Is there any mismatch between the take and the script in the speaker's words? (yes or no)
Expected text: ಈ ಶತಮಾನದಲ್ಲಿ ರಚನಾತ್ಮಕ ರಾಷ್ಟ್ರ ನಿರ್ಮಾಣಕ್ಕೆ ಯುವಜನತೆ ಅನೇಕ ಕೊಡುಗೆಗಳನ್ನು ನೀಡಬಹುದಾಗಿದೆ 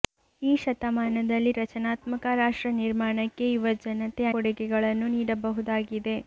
yes